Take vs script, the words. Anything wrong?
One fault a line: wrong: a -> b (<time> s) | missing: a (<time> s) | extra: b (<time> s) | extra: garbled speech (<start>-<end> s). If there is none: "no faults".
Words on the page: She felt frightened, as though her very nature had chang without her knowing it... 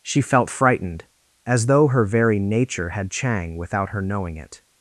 no faults